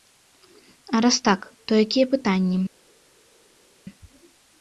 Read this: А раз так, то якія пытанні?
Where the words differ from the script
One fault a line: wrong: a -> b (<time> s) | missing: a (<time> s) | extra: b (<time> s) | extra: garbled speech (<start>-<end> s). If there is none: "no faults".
no faults